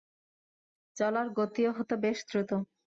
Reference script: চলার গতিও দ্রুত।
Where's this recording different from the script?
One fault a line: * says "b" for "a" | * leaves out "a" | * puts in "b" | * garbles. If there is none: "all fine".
* puts in "হত বেশ"